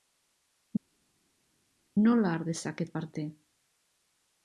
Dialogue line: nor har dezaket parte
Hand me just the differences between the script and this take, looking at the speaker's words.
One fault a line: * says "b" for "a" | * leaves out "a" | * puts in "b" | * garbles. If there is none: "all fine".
* says "nola" for "nor"